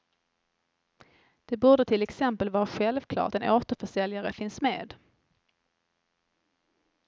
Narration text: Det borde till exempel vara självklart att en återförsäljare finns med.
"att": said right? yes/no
no